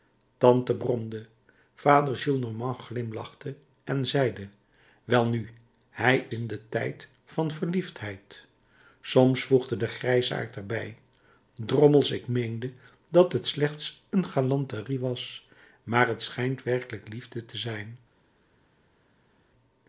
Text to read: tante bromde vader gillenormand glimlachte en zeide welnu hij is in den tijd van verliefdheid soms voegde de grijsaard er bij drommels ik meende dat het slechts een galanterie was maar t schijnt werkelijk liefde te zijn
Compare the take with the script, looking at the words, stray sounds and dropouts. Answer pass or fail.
fail